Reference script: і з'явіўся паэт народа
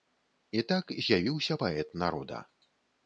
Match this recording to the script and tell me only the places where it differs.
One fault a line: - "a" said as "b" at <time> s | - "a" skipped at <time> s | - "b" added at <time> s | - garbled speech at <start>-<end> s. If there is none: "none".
- "так" added at 0.7 s